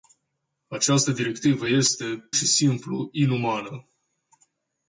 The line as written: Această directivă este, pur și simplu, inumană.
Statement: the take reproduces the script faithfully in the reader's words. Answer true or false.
false